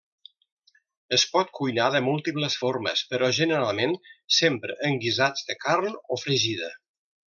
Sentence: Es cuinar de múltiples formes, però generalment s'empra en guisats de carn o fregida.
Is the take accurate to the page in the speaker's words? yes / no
no